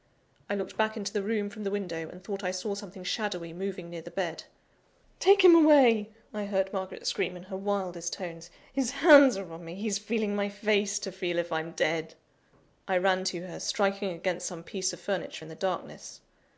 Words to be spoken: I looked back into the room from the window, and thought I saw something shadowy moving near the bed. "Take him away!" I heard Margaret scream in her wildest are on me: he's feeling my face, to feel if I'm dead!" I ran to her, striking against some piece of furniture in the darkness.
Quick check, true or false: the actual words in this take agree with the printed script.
false